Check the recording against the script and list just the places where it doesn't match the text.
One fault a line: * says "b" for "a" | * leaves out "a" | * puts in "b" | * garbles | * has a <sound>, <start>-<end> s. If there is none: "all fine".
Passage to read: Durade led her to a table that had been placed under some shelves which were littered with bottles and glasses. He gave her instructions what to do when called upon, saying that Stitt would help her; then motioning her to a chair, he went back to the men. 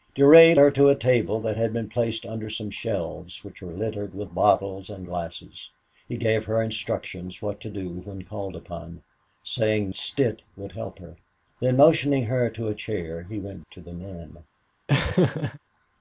* leaves out "led"
* leaves out "that"
* leaves out "back"
* has a laugh, 14.9-15.6 s